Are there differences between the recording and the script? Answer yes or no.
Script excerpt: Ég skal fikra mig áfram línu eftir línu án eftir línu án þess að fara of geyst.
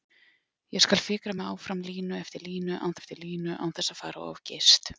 no